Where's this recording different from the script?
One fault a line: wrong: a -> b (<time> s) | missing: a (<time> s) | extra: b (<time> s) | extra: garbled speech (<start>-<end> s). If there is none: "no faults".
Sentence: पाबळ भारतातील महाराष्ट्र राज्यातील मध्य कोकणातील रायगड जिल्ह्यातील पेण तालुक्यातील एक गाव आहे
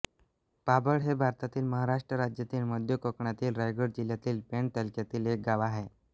extra: हे (1.0 s)